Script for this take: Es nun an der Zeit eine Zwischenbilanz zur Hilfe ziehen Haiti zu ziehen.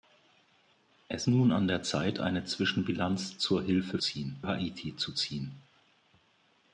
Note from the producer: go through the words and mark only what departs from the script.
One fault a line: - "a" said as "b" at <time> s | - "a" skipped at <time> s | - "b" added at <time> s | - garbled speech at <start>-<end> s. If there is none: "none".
none